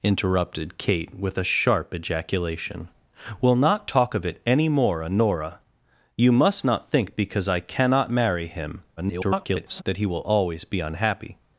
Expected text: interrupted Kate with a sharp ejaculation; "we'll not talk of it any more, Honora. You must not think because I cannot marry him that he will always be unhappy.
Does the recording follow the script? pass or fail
fail